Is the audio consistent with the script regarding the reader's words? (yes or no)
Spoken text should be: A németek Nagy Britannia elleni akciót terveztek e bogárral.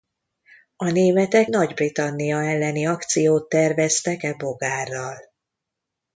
yes